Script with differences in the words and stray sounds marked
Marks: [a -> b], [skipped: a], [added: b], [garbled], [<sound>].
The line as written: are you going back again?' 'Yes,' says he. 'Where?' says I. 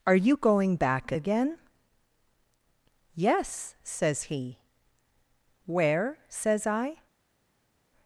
are you going back again?' 'Yes,' says he. 'Where?' says I.